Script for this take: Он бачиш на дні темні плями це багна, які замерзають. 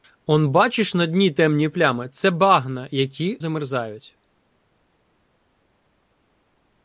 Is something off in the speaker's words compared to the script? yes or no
no